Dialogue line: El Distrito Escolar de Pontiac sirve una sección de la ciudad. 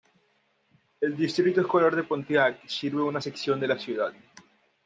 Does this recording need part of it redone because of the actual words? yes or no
no